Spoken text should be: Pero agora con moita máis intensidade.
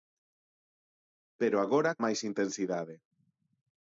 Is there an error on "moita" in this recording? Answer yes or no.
yes